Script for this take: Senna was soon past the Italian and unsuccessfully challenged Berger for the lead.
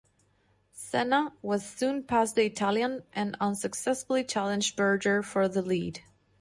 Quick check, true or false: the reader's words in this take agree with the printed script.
true